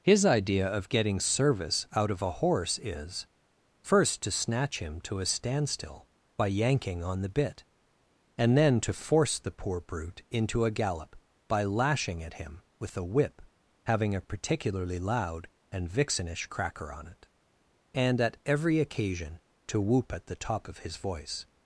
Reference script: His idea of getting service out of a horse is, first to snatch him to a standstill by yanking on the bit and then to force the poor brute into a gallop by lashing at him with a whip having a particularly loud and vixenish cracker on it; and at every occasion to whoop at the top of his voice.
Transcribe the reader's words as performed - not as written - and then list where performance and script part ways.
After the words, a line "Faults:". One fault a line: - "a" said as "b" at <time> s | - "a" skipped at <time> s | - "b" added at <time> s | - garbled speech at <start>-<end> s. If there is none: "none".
His idea of getting service out of a horse is, first to snatch him to a standstill by yanking on the bit and then to force the poor brute into a gallop by lashing at him with a whip having a particularly loud and vixenish cracker on it; and at every occasion to whoop at the top of his voice.
Faults:
none